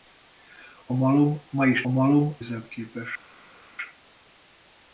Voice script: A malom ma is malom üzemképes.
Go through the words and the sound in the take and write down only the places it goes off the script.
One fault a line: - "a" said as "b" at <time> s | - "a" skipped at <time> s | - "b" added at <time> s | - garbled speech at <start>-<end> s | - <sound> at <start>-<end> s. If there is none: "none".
none